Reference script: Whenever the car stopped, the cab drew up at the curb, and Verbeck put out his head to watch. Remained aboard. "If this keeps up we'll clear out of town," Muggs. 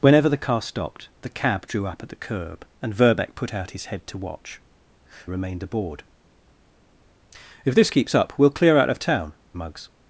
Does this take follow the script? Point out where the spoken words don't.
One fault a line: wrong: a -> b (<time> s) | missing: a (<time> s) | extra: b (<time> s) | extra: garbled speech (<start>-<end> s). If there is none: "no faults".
no faults